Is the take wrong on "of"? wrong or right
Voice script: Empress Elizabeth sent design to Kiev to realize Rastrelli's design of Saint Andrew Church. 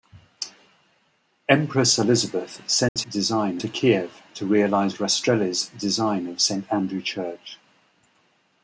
right